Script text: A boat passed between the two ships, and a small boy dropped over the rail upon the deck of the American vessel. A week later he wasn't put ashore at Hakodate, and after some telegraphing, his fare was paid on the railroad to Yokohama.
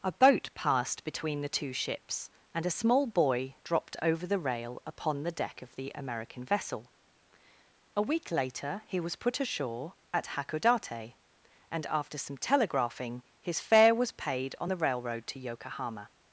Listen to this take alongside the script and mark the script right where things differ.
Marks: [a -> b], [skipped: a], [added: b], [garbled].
A boat passed between the two ships, and a small boy dropped over the rail upon the deck of the American vessel. A week later he [wasn't -> was] put ashore at Hakodate, and after some telegraphing, his fare was paid on the railroad to Yokohama.